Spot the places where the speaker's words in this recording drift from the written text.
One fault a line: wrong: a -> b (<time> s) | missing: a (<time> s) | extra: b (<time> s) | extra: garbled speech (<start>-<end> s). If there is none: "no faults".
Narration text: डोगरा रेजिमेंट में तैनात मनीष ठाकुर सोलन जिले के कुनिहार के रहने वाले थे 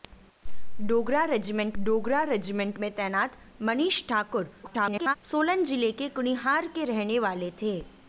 extra: डोगरा रेजिमेंट (1.8 s)
extra: garbled speech (4.6-5.2 s)